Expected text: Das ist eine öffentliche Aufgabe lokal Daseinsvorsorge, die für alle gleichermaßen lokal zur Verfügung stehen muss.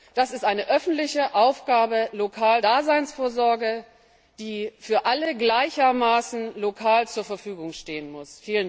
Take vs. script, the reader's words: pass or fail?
pass